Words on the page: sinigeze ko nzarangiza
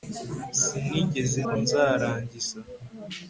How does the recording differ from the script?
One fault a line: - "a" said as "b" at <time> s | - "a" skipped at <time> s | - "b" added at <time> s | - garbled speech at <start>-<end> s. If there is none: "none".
none